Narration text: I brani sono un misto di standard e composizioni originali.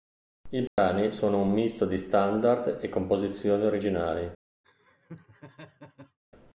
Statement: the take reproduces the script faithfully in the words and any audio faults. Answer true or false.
false